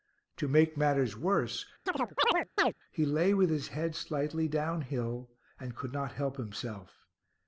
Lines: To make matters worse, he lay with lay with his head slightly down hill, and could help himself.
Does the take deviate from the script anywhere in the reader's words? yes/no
yes